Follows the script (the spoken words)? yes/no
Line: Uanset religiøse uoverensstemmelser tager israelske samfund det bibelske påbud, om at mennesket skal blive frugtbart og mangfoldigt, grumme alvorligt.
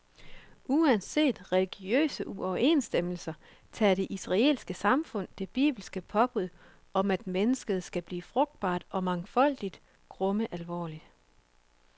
no